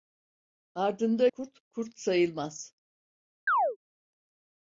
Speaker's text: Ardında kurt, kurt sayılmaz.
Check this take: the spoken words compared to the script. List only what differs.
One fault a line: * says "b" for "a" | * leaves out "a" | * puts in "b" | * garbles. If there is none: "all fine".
all fine